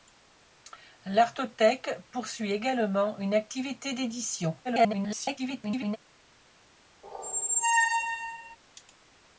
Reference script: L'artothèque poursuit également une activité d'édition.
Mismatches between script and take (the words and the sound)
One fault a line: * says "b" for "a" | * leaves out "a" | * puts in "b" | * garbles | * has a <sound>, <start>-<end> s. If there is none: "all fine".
* garbles
* has a squeak, 7.0-8.6 s